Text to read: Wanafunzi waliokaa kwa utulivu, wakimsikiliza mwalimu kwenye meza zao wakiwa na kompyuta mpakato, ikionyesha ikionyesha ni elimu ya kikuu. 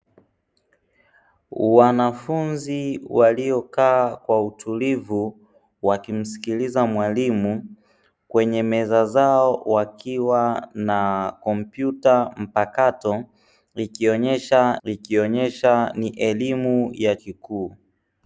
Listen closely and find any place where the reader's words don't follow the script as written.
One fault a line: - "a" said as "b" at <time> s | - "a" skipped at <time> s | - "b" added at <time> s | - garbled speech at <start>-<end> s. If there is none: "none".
none